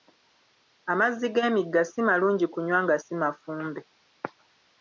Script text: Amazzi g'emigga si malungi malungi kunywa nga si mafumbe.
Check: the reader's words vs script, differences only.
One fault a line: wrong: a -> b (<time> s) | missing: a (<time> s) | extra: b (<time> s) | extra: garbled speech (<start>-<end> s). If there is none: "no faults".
missing: malungi (2.5 s)